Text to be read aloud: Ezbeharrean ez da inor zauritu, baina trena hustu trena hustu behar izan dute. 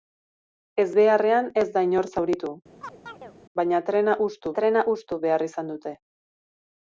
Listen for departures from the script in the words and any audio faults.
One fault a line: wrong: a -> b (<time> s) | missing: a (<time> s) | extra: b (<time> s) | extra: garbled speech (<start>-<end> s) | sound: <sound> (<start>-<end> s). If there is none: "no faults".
sound: chirp (2.8-3.3 s)